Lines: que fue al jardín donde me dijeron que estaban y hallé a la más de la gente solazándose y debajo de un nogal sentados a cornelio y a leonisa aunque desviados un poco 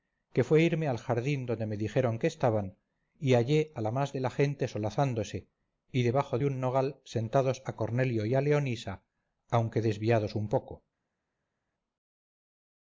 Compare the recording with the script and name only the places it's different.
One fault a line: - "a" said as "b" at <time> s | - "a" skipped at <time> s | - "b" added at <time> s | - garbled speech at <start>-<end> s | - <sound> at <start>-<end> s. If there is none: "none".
- "irme" added at 0.6 s